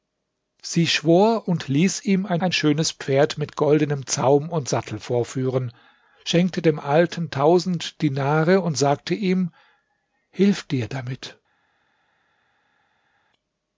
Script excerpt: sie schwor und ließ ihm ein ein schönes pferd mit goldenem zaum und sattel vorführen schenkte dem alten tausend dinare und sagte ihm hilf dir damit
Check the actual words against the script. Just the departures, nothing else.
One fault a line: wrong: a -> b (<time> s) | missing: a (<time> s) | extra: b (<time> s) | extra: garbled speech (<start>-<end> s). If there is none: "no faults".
no faults